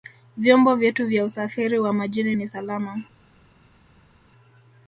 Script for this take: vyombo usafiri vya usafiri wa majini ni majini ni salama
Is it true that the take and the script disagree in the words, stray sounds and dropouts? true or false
true